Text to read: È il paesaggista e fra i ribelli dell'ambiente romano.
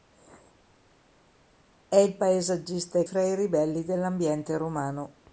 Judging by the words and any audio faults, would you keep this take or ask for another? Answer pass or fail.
pass